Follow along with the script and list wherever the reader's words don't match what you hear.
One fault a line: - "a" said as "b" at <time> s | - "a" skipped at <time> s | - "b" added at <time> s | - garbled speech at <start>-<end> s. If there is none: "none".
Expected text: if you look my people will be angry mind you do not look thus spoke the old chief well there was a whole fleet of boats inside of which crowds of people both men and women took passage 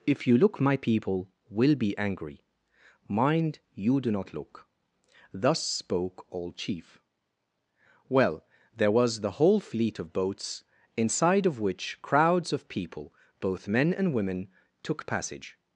- "the" skipped at 6.2 s
- "a" said as "the" at 9.2 s